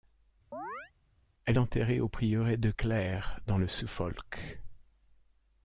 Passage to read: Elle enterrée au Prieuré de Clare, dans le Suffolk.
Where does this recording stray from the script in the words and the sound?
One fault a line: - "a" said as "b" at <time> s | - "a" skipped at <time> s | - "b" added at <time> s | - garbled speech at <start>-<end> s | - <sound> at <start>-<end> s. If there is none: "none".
- chirp at 0.5-0.9 s